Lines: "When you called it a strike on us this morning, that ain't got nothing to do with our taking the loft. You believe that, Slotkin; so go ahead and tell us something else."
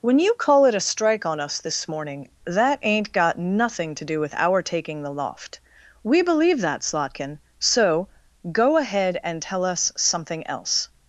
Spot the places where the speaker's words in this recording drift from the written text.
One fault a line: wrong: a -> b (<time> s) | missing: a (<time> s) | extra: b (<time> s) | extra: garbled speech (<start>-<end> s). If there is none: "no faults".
wrong: called -> call (0.3 s)
wrong: You -> We (6.0 s)